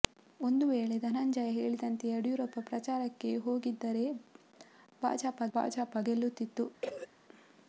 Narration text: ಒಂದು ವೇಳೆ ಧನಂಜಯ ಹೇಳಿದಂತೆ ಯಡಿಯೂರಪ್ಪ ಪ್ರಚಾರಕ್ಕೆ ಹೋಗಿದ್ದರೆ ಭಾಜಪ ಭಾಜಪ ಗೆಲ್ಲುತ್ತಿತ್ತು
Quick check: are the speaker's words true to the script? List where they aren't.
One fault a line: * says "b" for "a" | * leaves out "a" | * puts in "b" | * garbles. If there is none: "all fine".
all fine